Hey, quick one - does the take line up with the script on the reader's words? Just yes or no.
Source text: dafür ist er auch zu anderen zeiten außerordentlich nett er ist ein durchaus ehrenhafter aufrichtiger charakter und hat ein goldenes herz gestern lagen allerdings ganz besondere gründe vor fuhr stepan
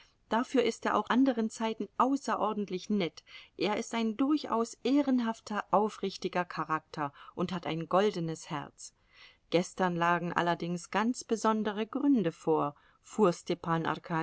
no